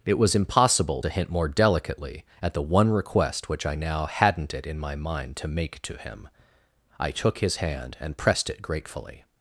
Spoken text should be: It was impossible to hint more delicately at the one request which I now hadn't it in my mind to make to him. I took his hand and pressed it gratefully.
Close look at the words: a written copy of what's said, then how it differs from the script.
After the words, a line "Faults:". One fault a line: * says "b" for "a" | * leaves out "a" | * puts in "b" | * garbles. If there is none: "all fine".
It was impossible to hint more delicately at the one request which I now hadn't it in my mind to make to him. I took his hand and pressed it gratefully.
Faults:
all fine